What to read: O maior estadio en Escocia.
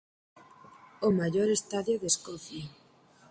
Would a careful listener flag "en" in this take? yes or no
yes